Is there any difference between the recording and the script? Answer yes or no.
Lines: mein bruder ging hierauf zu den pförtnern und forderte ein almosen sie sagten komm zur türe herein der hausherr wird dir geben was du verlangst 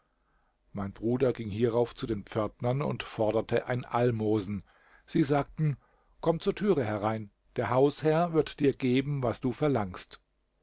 no